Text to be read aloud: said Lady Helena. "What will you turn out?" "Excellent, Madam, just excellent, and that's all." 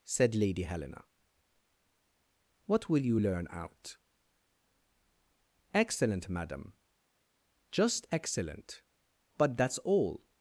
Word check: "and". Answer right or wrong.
wrong